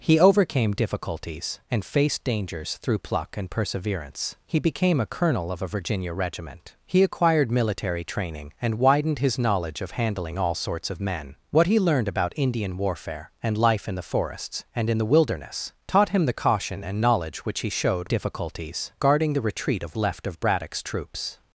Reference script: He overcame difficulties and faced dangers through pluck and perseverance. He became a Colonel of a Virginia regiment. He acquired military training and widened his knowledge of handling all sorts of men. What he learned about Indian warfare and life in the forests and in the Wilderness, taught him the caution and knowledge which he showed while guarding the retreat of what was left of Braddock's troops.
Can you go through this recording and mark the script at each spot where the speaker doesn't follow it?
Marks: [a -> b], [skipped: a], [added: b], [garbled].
He overcame difficulties and faced dangers through pluck and perseverance. He became a Colonel of a Virginia regiment. He acquired military training and widened his knowledge of handling all sorts of men. What he learned about Indian warfare and life in the forests and in the Wilderness, taught him the caution and knowledge which he showed [while -> difficulties] guarding the retreat of [skipped: what was] left of Braddock's troops.